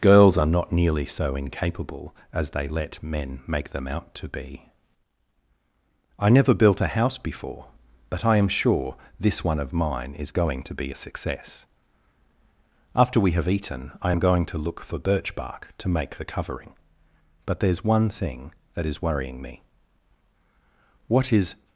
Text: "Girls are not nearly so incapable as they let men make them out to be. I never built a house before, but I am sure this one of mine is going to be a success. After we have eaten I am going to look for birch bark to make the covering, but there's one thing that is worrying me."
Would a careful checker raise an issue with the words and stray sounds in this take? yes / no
yes